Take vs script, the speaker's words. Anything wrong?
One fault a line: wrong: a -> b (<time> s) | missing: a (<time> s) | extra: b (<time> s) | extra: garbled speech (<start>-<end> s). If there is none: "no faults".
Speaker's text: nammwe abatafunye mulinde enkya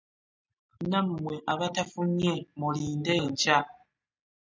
no faults